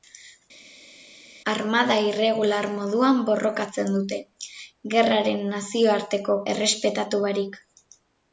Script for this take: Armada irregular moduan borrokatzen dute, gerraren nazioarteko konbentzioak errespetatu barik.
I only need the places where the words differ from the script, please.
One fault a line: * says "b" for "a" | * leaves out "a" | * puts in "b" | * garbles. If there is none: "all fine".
* leaves out "konbentzioak"